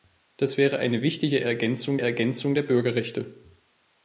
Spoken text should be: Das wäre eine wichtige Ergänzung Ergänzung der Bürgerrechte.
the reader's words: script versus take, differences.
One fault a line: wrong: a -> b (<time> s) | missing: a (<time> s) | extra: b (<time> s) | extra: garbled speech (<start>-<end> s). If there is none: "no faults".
no faults